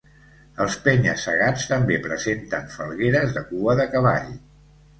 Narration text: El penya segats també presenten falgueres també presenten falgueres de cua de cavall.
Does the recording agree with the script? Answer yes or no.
no